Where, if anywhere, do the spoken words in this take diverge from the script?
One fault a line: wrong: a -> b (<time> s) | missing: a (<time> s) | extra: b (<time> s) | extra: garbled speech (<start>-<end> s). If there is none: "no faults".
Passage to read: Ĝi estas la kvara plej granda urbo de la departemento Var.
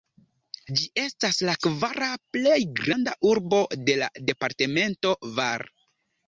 no faults